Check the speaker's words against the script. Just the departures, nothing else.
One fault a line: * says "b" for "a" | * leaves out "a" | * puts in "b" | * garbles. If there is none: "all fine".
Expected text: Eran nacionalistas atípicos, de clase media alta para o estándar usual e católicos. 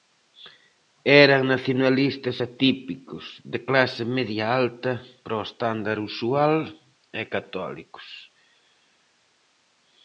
all fine